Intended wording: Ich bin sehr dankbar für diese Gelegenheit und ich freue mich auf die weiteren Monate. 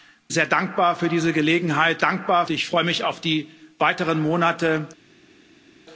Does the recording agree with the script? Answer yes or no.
no